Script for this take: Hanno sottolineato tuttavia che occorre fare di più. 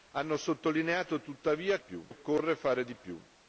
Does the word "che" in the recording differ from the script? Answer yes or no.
yes